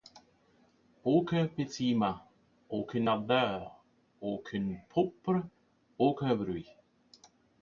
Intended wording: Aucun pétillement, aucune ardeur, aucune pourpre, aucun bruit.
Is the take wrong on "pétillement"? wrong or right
right